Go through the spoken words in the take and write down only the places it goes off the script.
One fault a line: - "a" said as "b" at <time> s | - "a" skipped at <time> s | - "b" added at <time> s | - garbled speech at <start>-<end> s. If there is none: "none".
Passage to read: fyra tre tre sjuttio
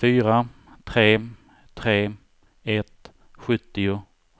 - "ett" added at 2.6 s